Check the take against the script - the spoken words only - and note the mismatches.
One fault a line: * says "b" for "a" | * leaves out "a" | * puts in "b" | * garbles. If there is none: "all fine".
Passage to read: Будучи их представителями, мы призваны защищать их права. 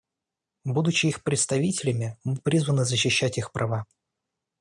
all fine